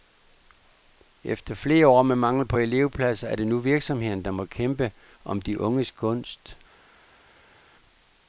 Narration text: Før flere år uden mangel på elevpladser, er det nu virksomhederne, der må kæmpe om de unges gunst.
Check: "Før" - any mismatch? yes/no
yes